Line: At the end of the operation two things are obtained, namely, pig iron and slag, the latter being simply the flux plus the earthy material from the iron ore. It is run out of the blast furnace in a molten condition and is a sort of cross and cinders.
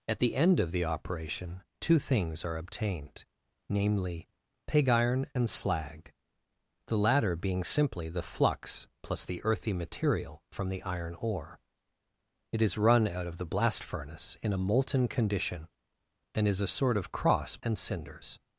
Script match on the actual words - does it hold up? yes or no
yes